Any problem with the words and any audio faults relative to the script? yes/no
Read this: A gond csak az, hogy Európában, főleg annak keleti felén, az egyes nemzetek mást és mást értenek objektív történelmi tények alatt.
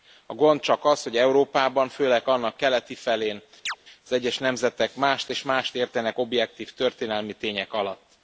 yes